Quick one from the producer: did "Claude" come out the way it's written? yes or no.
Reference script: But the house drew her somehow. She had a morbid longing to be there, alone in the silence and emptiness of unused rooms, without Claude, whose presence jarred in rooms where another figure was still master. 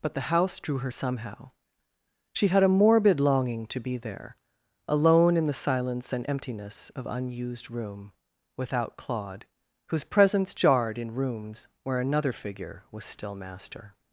yes